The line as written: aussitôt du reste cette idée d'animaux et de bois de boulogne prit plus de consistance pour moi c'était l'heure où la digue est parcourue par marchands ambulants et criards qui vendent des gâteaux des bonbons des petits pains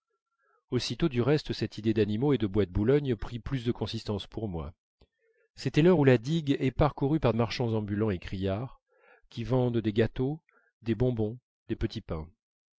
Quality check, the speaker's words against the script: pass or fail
pass